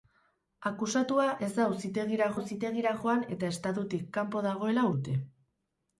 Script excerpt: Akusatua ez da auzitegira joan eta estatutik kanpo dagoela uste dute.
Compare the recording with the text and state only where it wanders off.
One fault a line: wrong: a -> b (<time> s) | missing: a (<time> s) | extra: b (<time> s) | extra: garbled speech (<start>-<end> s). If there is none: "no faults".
extra: auzitegira (2.4 s)
missing: uste (4.9 s)